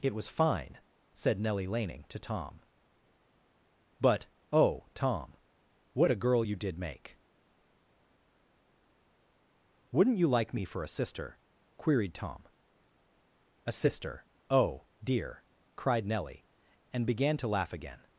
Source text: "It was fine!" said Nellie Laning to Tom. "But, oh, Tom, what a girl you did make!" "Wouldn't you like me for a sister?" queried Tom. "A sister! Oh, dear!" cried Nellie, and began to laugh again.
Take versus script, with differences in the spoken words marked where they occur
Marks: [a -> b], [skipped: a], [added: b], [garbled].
"It was fine!" said Nellie Laning to Tom. "But, oh, Tom, what a girl you did make!" "Wouldn't you like me for a sister?" queried Tom. "A sister! Oh, dear!" cried Nellie, and began to laugh again.